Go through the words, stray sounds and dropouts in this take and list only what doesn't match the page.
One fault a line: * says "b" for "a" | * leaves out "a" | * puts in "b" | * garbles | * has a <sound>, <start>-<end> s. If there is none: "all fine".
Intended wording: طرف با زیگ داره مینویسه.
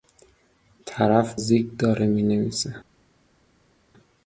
* leaves out "با"